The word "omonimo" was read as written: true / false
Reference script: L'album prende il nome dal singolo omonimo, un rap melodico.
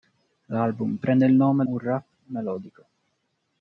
false